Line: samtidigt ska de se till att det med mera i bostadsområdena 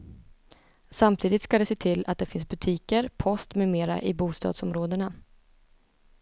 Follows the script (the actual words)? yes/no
no